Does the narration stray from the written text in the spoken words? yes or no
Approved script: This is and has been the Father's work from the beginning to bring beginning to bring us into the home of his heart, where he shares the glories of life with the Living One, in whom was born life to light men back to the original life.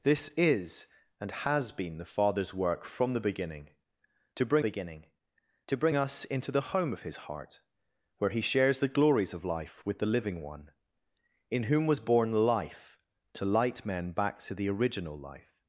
no